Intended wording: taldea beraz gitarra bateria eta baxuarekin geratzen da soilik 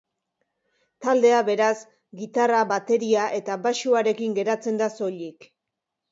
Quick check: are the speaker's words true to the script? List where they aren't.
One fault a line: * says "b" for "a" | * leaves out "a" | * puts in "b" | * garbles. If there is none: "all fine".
all fine